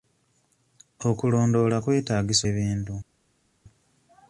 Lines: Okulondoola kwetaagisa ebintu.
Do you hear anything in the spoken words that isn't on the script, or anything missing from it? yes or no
no